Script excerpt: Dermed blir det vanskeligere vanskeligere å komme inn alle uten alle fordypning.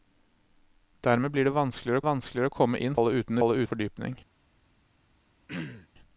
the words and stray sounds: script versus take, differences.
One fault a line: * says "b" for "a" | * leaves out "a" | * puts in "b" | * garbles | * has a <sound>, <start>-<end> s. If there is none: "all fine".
* has a throat clearing, 5.5-5.9 s